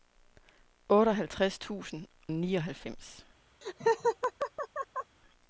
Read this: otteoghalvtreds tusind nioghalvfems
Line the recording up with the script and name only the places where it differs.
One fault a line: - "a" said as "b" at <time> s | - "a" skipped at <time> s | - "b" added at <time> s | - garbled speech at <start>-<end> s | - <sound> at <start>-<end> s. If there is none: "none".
- laugh at 3.6-5.2 s